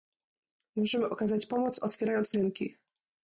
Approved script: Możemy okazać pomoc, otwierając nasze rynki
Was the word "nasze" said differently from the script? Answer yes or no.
yes